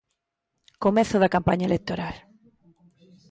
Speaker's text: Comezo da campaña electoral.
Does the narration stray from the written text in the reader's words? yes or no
no